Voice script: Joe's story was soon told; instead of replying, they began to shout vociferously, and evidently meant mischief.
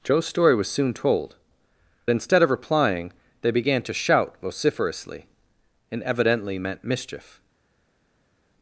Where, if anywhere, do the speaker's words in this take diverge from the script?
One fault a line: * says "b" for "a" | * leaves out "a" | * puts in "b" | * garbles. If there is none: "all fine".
all fine